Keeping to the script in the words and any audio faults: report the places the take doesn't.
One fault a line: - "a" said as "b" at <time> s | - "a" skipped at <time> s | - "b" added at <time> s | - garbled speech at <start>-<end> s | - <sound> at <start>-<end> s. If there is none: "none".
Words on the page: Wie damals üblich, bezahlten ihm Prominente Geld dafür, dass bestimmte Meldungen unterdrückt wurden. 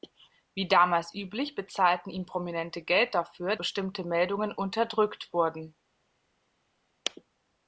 - "dass" skipped at 3.5 s